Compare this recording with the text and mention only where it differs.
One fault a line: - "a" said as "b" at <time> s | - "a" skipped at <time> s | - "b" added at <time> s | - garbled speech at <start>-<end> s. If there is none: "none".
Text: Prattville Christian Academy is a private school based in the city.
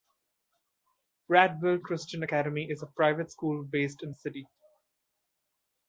none